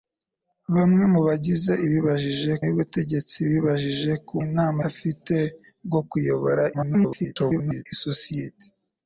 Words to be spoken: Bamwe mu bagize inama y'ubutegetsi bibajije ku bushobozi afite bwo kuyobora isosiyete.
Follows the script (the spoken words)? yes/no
no